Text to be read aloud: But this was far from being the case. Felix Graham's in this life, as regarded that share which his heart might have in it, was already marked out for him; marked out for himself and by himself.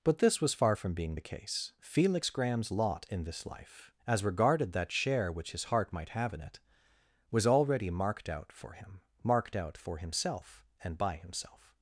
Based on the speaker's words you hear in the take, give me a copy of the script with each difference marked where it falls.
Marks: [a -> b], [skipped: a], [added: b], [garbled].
But this was far from being the case. Felix Graham's [added: lot] in this life, as regarded that share which his heart might have in it, was already marked out for him; marked out for himself and by himself.